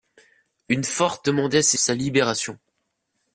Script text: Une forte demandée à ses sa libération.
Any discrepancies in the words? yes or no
no